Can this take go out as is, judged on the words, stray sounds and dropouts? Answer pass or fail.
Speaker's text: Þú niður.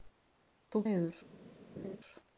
fail